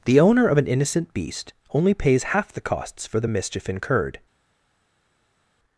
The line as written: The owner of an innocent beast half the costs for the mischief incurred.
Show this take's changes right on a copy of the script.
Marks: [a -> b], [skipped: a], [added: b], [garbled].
The owner of an innocent beast [added: only pays] half the costs for the mischief incurred.